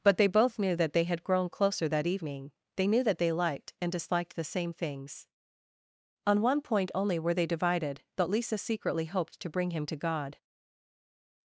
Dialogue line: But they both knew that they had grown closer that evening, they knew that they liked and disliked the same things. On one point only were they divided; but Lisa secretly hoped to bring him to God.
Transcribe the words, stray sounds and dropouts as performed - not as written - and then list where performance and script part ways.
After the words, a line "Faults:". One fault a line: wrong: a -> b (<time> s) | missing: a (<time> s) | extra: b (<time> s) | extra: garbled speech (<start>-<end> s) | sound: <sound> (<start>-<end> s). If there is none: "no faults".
But they both knew that they had grown closer that evening, they knew that they liked and disliked the same things. On one point only were they divided; but Lisa secretly hoped to bring him to God.
Faults:
no faults